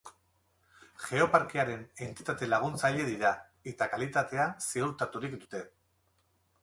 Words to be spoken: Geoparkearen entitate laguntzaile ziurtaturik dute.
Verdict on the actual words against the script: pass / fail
fail